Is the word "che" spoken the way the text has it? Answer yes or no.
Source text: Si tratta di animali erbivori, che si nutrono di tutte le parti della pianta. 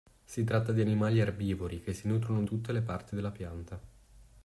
yes